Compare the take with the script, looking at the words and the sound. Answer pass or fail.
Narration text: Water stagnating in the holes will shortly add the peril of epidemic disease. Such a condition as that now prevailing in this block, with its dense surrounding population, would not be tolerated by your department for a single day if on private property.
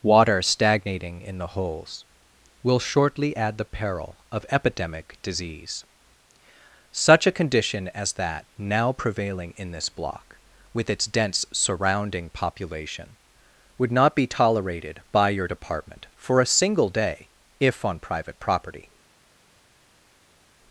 pass